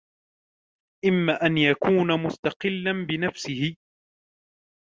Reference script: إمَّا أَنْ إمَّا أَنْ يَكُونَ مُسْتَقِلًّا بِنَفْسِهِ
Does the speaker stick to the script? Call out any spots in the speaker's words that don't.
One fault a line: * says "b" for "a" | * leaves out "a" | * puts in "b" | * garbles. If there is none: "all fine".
* leaves out "إمَّا أَنْ"